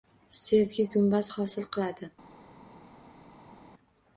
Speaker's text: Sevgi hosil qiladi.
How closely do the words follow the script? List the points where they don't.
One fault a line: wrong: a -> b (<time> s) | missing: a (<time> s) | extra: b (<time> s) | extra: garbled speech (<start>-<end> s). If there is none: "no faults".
extra: gumbaz (0.9 s)